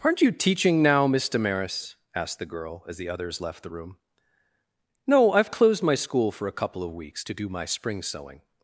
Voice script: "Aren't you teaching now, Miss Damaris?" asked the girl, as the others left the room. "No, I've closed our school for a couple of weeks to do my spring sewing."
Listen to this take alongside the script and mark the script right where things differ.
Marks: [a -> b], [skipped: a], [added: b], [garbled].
"Aren't you teaching now, Miss Damaris?" asked the girl, as the others left the room. "No, I've closed [our -> my] school for a couple of weeks to do my spring sewing."